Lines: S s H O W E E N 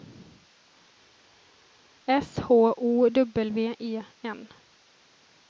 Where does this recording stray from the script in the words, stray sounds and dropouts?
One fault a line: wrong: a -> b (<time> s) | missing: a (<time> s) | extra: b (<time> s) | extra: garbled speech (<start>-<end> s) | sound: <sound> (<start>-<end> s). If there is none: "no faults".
missing: s (2.4 s)
missing: E (4.0 s)